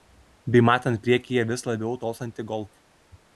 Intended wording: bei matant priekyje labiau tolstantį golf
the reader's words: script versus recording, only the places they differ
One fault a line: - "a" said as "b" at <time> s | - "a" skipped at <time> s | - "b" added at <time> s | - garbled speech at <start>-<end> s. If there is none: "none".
- "vis" added at 1.5 s